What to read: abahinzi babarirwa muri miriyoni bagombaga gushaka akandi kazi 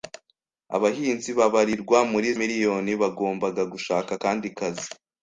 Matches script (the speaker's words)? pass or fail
pass